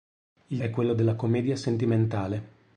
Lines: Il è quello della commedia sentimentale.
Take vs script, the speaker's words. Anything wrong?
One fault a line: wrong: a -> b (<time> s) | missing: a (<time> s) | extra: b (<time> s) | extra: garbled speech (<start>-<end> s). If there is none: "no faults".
no faults